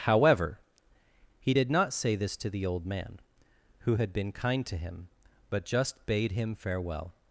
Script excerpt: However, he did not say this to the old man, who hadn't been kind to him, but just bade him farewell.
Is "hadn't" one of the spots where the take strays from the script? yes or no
yes